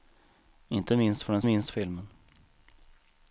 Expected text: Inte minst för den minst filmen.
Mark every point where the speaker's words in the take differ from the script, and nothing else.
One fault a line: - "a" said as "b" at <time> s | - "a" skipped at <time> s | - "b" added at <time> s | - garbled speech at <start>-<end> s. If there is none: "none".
none